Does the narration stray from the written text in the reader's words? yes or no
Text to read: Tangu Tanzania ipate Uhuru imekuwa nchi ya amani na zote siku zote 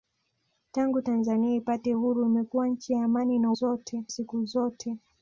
no